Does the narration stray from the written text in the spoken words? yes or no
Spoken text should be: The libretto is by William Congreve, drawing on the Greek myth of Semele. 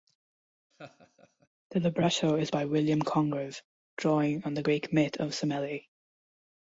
no